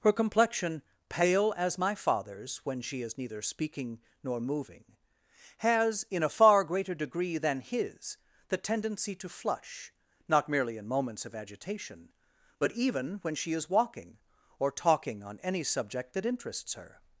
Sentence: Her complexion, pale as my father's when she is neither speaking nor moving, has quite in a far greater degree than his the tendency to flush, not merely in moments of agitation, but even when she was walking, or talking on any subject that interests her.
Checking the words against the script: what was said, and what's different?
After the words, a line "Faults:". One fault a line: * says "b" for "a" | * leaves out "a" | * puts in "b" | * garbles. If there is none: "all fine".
Her complexion, pale as my father's when she is neither speaking nor moving, has in a far greater degree than his the tendency to flush, not merely in moments of agitation, but even when she is walking, or talking on any subject that interests her.
Faults:
* leaves out "quite"
* says "is" for "was"